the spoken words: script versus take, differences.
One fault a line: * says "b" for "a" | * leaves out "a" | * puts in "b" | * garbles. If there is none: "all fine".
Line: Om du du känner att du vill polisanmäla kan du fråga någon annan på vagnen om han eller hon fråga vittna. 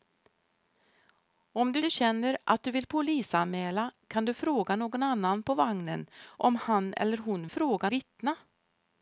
all fine